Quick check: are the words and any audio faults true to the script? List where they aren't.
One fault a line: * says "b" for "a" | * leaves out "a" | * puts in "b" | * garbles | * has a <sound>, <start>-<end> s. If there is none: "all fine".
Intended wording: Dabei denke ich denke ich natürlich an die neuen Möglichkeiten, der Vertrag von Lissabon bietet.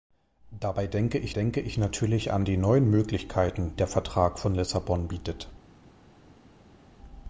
all fine